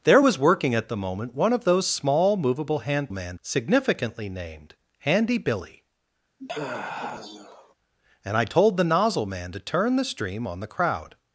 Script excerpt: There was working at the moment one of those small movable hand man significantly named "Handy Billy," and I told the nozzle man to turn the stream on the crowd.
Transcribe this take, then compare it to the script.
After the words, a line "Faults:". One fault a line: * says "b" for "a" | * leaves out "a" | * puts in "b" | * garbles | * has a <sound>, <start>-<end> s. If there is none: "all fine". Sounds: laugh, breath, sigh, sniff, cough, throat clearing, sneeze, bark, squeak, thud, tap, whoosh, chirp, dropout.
There was working at the moment one of those small movable hand man significantly named "Handy Billy," and I told the nozzle man to turn the stream on the crowd.
Faults:
* has a sigh, 6.4-7.7 s